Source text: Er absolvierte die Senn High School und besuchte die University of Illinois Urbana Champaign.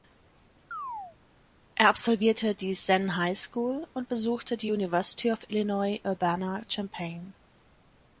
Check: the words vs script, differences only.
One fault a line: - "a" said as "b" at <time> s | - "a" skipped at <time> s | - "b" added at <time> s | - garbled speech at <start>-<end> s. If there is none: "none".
none